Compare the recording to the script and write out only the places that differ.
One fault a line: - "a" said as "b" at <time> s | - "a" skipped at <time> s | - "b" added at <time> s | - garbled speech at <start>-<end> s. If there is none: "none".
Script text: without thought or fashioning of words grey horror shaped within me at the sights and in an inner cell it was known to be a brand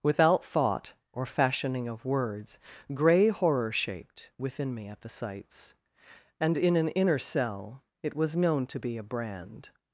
none